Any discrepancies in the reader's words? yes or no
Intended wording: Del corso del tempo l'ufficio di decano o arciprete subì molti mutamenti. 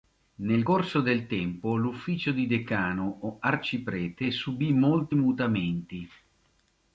yes